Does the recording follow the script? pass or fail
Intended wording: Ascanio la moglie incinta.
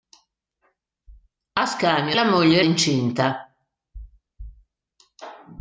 pass